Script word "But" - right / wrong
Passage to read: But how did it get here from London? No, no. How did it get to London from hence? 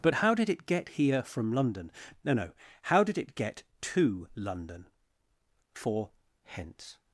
right